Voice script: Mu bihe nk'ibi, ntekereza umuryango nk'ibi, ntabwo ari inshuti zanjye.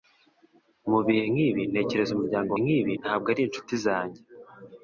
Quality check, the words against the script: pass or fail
pass